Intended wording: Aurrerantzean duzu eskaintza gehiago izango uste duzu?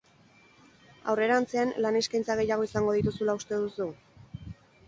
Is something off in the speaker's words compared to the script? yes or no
yes